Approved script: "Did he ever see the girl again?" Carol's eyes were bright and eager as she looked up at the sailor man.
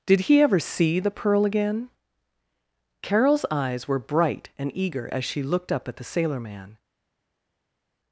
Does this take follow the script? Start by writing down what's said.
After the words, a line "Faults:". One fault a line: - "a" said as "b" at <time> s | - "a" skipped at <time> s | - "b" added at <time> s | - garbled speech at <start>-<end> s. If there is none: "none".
"Did he ever see the pearl again?" Carol's eyes were bright and eager as she looked up at the sailor man.
Faults:
- "girl" said as "pearl" at 1.1 s